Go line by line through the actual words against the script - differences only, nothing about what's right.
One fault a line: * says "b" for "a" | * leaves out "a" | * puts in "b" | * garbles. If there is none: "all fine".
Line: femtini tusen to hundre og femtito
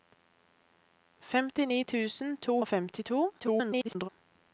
* leaves out "hundre"
* garbles